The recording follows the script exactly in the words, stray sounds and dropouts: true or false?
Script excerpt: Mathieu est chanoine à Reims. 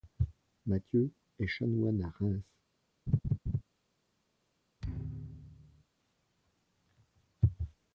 false